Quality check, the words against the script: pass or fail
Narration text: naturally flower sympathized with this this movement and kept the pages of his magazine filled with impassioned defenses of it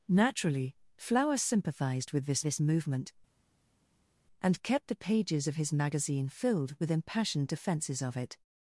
pass